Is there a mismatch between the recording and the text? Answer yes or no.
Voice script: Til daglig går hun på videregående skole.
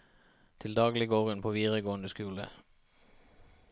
no